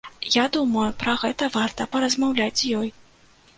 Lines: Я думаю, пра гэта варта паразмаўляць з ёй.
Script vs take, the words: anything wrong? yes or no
no